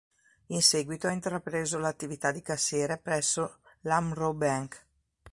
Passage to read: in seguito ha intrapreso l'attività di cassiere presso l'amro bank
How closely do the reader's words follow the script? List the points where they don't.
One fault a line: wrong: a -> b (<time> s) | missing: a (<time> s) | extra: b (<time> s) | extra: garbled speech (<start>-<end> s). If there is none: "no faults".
no faults